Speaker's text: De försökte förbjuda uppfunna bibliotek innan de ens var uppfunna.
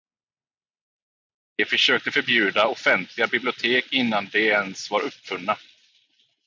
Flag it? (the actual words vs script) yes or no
yes